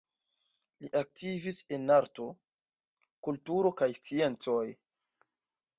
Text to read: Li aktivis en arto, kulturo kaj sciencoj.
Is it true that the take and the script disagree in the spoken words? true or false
false